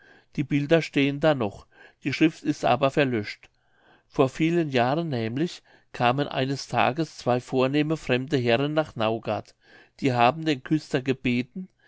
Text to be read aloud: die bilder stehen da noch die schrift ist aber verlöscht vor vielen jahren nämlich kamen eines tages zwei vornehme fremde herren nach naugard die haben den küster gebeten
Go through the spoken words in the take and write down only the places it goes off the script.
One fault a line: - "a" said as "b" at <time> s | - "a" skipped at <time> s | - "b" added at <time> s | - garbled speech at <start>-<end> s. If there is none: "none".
none